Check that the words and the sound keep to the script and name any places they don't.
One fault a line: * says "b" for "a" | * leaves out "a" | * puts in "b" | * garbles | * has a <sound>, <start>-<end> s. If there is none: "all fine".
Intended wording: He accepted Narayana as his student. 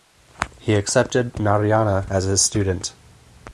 all fine